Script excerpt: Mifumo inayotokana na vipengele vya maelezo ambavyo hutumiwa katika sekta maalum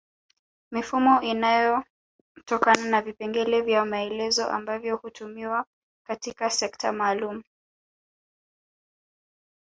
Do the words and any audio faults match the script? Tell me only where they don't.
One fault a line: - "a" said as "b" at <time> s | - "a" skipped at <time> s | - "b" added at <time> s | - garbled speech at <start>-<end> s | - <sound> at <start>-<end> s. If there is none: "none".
none